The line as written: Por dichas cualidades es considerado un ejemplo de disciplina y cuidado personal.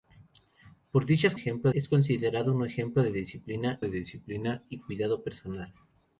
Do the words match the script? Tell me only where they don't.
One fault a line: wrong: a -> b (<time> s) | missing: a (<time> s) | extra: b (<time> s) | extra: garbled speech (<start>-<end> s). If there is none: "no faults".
wrong: cualidades -> ejemplo (1.3 s)
extra: de disciplina (3.8 s)